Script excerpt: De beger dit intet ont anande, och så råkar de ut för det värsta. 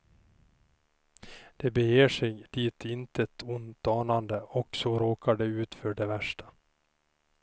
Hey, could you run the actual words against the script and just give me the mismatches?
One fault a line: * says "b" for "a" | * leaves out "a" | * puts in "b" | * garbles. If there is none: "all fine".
* puts in "sig"